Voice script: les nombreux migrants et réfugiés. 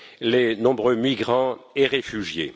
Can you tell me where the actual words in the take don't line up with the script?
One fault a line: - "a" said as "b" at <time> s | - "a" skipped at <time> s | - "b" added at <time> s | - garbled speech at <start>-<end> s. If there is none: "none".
none